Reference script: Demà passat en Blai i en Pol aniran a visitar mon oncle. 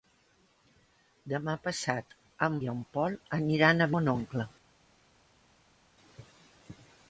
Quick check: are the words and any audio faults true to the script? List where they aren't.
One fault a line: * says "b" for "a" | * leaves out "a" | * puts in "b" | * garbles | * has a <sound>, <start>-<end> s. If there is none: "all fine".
* leaves out "Blai"
* leaves out "visitar"